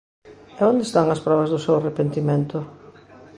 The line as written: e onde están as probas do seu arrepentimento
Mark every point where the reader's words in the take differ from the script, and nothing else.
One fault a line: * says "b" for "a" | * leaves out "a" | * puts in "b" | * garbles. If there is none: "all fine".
all fine